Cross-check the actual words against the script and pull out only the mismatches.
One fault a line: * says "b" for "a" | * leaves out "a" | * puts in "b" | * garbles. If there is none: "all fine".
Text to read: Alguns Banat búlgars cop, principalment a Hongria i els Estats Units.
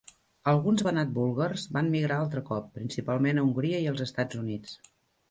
* puts in "van migrar altre"